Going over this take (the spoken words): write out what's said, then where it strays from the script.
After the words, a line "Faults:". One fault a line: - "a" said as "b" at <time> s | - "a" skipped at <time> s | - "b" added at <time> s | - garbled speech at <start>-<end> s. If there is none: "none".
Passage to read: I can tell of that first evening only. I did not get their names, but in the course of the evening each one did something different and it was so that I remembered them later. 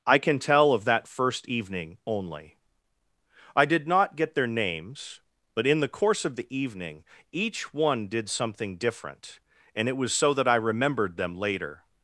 I can tell of that first evening only. I did not get their names, but in the course of the evening each one did something different and it was so that I remembered them later.
Faults:
none